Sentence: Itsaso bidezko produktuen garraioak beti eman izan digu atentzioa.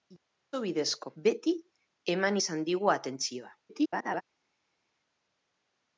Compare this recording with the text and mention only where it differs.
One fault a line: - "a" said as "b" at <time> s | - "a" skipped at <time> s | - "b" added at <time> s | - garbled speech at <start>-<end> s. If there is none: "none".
- "produktuen garraioak" skipped at 1.1 s
- garbled speech at 3.6-4.2 s